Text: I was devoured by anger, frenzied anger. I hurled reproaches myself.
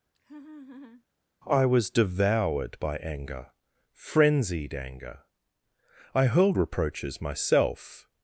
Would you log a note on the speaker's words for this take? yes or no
no